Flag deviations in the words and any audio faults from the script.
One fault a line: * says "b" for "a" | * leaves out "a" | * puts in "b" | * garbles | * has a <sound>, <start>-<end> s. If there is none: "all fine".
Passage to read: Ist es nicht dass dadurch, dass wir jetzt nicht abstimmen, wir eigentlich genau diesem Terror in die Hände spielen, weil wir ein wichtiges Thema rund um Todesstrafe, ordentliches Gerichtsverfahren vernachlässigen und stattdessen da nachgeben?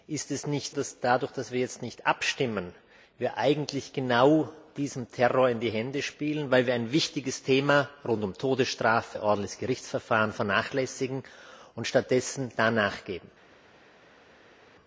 all fine